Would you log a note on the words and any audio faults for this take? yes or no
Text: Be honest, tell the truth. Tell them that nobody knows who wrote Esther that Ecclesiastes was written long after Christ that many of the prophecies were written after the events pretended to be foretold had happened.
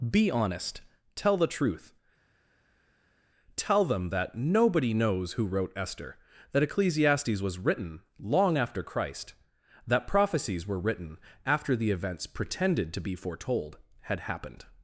yes